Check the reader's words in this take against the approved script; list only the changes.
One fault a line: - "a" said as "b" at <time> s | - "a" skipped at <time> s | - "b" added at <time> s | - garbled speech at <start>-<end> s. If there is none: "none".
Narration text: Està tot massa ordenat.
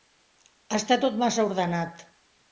none